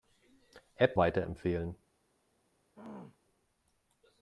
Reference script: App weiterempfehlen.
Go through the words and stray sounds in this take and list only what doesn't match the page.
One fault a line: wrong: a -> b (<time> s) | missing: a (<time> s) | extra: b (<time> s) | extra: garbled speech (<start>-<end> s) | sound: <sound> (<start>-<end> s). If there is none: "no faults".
sound: throat clearing (2.7-3.2 s)